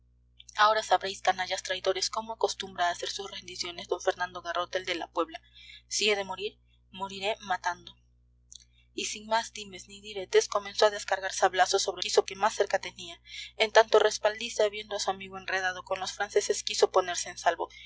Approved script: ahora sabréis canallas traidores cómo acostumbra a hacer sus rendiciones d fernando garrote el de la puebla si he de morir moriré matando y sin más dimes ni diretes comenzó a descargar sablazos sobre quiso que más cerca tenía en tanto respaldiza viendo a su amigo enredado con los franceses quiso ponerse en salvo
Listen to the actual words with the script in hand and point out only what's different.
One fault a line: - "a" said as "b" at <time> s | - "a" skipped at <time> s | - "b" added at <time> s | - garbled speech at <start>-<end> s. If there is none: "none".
none